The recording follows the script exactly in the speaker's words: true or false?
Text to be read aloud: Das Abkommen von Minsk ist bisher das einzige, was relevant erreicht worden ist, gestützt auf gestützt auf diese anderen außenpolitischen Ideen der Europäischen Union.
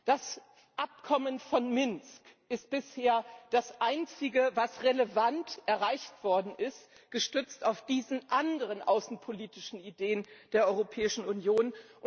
false